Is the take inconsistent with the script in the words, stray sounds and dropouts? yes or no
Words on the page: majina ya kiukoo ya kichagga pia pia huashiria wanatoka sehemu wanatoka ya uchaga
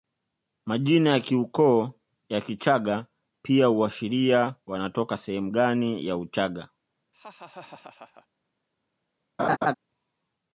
yes